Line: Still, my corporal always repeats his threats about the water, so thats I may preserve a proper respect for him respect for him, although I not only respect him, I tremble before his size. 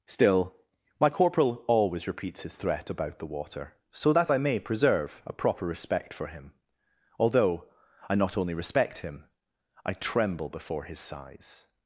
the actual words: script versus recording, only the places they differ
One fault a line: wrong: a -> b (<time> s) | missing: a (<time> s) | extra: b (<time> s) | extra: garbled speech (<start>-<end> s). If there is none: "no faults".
wrong: threats -> threat (2.5 s)
wrong: thats -> that (4.1 s)
missing: respect for him (6.5 s)